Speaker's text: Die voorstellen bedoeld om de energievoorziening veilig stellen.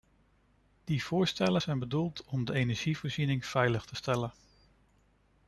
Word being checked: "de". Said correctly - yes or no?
yes